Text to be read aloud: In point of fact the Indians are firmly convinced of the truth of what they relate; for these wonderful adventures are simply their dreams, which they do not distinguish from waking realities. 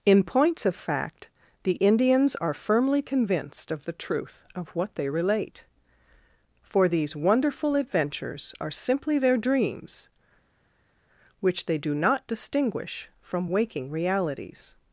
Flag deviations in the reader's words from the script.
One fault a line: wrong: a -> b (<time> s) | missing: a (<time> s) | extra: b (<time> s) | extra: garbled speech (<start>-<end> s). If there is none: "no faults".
wrong: point -> points (0.2 s)